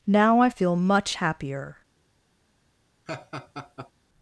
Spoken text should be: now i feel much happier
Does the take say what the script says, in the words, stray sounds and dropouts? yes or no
no